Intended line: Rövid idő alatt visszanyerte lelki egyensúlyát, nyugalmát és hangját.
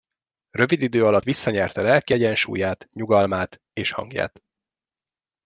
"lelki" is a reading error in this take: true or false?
false